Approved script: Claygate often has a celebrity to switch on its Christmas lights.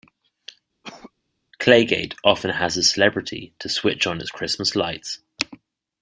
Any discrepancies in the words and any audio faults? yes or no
yes